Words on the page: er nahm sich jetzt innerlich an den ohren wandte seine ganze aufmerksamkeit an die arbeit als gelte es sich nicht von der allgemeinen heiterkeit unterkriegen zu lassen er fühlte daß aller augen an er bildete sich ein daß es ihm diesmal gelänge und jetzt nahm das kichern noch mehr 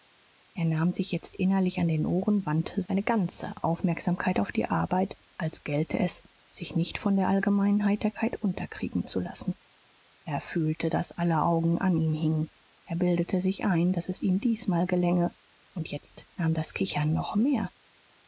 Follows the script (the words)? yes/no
no